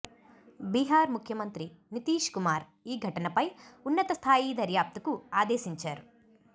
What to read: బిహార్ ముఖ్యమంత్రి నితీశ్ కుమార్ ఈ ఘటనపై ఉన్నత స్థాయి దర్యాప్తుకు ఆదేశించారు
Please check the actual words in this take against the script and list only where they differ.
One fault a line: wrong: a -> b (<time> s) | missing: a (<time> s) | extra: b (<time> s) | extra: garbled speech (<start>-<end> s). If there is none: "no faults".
no faults